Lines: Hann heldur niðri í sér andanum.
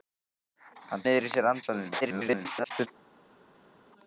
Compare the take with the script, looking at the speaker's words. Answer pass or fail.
fail